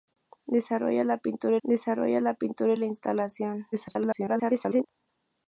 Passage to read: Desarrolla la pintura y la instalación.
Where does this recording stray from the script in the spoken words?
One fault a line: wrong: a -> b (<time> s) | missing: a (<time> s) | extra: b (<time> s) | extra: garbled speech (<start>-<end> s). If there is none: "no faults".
extra: desarrolla la pintura (1.6 s)
extra: garbled speech (3.7-4.9 s)